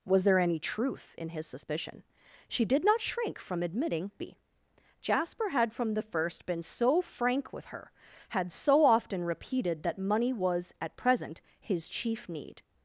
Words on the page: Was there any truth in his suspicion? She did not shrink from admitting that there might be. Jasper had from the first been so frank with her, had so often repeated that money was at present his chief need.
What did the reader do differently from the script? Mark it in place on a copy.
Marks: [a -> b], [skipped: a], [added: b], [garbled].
Was there any truth in his suspicion? She did not shrink from admitting [skipped: that there might] be. Jasper had from the first been so frank with her, had so often repeated that money was at present his chief need.